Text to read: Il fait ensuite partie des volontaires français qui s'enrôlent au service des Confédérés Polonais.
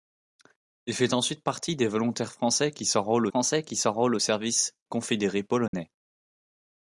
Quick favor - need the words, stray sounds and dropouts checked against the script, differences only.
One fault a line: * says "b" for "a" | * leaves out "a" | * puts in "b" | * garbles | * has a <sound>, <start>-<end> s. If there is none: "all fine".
* puts in "français qui s'enrôlent"
* leaves out "des"
* has a dropout, 5.7-5.7 s